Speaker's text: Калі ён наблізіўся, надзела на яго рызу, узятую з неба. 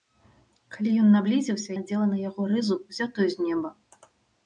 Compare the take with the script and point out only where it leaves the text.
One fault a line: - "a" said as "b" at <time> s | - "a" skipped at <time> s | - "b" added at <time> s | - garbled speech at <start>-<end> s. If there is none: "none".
none